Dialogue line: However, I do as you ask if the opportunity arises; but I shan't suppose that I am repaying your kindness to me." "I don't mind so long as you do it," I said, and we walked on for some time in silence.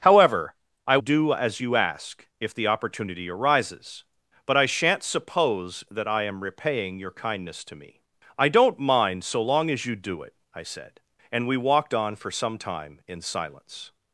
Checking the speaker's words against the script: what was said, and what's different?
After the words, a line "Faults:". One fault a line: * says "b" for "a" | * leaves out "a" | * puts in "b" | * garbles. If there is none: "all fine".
However, I do as you ask if the opportunity arises; but I shan't suppose that I am repaying your kindness to me." "I don't mind so long as you do it," I said, and we walked on for some time in silence.
Faults:
all fine